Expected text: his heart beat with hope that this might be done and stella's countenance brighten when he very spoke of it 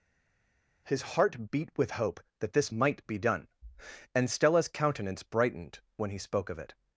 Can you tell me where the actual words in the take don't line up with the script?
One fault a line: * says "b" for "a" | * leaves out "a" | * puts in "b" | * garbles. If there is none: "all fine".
* says "brightened" for "brighten"
* leaves out "very"